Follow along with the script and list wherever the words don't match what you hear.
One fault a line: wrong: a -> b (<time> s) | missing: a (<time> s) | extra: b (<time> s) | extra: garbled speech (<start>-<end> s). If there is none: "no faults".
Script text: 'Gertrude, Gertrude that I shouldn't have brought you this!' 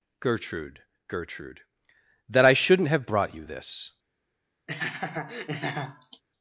no faults